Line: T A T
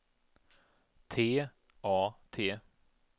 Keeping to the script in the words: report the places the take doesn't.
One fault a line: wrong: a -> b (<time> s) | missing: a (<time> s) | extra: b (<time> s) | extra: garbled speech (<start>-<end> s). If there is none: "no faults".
no faults